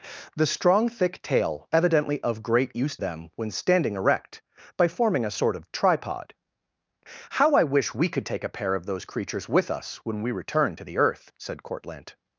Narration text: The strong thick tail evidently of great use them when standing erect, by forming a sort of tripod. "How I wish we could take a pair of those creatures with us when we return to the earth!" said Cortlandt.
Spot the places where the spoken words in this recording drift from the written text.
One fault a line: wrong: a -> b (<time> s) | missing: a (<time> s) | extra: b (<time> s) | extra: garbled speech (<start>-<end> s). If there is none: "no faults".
no faults